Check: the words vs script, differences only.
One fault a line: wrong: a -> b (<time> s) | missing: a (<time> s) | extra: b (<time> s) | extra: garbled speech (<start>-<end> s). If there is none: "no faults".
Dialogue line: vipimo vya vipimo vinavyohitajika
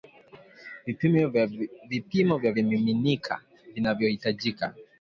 wrong: vipimo -> vimiminika (2.5 s)